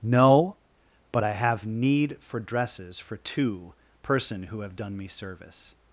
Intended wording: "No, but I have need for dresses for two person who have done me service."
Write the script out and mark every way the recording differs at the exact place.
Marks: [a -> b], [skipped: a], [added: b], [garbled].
"No, but I have need for dresses for two person who have done me service."